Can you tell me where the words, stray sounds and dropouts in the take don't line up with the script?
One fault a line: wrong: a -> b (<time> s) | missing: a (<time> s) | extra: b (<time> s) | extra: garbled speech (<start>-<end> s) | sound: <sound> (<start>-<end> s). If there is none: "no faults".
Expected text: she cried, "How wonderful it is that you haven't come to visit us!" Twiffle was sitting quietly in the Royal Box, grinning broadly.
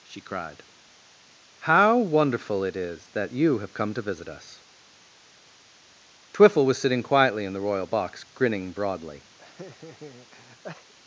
wrong: haven't -> have (3.6 s)
sound: laugh (9.4-10.9 s)